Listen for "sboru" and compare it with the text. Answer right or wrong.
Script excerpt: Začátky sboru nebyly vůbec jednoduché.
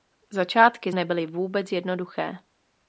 wrong